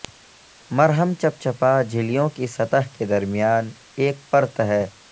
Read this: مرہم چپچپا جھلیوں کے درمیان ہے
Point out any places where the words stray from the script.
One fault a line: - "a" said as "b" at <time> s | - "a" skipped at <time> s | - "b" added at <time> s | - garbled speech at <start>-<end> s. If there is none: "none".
- "کی سطح" added at 2.4 s
- "ایک پرت" added at 4.0 s